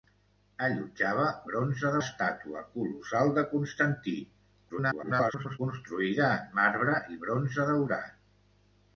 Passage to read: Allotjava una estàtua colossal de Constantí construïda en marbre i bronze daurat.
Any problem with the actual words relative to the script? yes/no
yes